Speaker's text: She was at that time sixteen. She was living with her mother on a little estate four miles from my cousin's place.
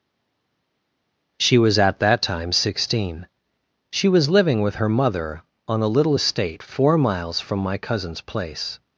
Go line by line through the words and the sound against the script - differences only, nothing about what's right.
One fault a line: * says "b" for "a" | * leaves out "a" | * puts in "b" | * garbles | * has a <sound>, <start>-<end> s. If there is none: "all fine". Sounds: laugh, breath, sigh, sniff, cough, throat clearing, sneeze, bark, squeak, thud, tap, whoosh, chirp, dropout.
all fine